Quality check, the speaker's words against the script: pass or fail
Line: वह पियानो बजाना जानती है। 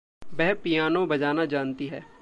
pass